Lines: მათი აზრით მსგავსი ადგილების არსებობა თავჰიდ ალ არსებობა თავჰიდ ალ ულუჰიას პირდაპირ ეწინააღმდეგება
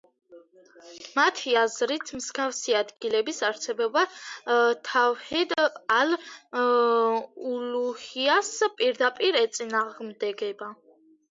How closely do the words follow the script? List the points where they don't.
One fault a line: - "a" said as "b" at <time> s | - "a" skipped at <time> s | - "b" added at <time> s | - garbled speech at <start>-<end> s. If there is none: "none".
- "არსებობა თავჰიდ ალ" skipped at 6.1 s